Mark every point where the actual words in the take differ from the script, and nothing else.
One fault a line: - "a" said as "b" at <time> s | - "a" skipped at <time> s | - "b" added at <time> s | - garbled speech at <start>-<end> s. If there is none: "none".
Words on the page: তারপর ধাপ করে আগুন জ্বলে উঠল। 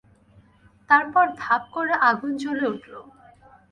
none